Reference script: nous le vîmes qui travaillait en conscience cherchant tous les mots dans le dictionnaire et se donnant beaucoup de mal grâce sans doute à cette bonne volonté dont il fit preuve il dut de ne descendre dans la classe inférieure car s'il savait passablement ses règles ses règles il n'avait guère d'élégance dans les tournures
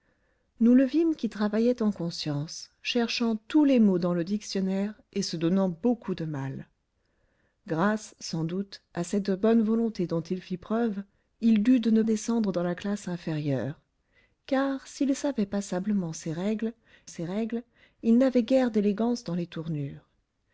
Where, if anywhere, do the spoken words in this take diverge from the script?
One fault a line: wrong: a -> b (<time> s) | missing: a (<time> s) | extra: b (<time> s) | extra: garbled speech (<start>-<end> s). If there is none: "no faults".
no faults